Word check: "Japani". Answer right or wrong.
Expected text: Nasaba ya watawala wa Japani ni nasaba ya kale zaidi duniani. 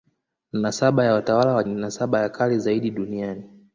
wrong